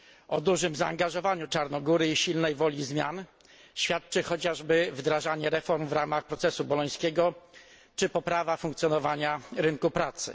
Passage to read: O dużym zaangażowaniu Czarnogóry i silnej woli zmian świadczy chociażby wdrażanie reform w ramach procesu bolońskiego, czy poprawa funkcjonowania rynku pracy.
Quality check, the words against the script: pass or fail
pass